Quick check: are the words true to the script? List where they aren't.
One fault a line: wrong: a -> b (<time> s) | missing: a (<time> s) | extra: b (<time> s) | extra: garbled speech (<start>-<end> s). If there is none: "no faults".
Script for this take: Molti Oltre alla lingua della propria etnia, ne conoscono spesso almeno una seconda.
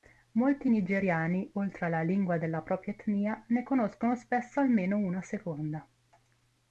extra: Nigeriani (0.7 s)